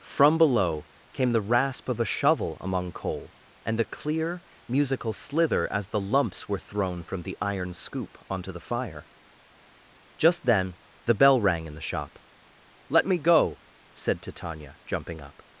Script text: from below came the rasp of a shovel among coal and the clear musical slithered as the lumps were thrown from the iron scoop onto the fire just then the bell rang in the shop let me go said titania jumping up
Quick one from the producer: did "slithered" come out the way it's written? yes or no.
no